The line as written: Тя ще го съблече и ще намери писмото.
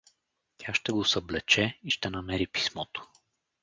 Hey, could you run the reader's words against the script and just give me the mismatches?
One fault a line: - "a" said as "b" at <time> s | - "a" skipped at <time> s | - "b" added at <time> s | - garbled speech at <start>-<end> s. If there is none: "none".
none